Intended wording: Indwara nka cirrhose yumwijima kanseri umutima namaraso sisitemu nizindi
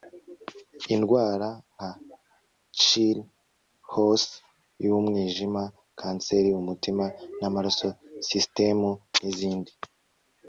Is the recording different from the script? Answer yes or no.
no